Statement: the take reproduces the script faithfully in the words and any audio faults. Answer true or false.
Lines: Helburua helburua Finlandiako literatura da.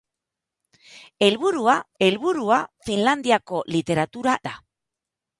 true